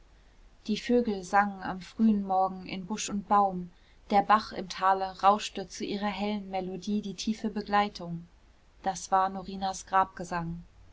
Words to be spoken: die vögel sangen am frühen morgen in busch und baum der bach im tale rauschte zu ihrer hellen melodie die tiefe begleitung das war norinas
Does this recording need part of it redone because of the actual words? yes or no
no